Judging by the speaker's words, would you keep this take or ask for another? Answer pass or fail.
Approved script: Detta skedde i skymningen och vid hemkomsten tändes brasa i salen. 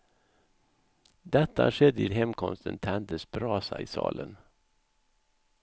fail